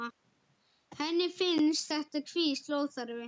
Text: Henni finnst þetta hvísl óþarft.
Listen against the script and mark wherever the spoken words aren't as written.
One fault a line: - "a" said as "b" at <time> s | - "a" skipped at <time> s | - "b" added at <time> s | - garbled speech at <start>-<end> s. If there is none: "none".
none